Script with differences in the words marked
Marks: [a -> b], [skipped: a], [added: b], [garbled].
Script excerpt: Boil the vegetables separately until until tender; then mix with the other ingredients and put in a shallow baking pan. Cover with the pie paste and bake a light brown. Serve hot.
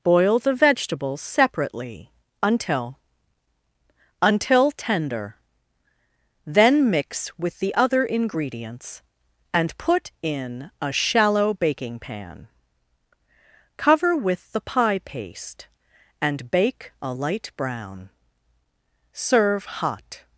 Boil the vegetables separately until until tender; then mix with the other ingredients and put in a shallow baking pan. Cover with the pie paste and bake a light brown. Serve hot.